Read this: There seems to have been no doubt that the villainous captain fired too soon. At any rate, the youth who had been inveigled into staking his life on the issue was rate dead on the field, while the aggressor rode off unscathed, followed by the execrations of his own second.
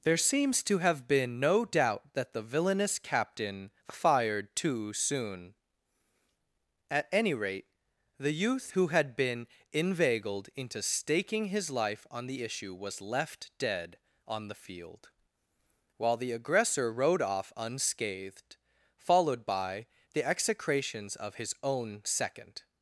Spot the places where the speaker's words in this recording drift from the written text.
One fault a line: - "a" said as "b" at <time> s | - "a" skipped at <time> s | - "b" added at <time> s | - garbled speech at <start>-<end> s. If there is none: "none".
- "rate" said as "left" at 13.0 s